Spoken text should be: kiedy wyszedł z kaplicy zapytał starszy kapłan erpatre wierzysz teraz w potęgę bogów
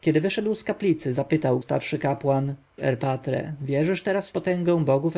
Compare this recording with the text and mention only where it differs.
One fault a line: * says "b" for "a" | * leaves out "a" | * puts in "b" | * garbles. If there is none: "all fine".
all fine